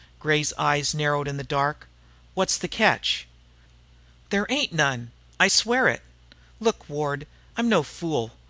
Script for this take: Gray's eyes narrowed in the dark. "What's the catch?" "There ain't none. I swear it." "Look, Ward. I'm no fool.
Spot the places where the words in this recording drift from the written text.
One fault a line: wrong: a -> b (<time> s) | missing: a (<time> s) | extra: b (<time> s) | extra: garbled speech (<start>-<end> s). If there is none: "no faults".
no faults